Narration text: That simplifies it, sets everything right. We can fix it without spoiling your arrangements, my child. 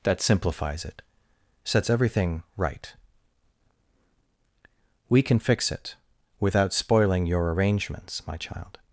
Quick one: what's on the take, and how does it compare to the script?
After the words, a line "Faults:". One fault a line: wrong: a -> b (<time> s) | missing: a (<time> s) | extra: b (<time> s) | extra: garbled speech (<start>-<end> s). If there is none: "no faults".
That simplifies it, sets everything right. We can fix it without spoiling your arrangements, my child.
Faults:
no faults